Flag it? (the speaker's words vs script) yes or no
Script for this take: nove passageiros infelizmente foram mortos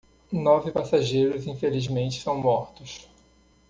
yes